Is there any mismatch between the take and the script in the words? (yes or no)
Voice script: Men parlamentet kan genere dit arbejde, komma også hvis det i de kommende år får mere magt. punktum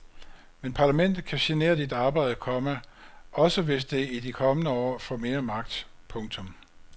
no